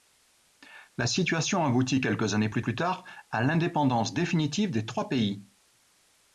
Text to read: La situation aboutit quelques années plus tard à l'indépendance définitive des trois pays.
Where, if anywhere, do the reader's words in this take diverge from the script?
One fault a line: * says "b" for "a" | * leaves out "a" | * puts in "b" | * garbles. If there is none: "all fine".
* puts in "plus"